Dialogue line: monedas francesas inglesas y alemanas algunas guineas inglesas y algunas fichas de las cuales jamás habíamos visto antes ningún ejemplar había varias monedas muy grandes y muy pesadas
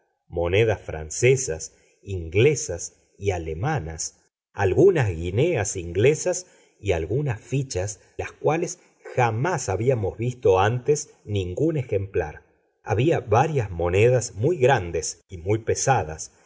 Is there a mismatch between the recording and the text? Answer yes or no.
yes